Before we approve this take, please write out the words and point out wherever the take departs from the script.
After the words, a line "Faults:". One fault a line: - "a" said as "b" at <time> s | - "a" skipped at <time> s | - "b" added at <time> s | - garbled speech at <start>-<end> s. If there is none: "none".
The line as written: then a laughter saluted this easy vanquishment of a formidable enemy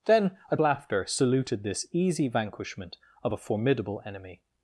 then a laughter saluted this easy vanquishment of a formidable enemy
Faults:
none